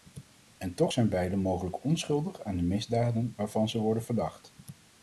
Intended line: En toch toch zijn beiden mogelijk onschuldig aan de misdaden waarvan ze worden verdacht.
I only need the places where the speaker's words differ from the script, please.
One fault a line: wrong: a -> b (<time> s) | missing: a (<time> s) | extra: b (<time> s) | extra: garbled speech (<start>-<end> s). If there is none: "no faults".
missing: toch (0.9 s)